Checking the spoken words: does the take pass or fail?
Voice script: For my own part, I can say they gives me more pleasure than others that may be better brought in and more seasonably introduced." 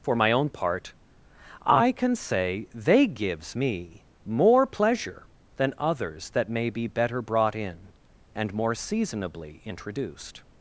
pass